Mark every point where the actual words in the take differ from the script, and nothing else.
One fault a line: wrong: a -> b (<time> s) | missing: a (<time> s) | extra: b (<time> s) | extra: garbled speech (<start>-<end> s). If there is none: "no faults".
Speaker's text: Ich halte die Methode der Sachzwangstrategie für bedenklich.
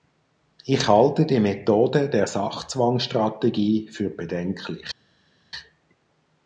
no faults